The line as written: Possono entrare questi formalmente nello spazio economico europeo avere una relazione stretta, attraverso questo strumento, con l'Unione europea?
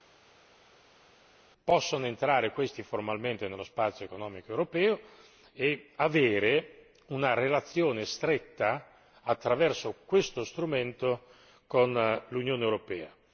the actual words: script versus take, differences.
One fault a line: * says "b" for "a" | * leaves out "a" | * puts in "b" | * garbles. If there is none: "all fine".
* puts in "e"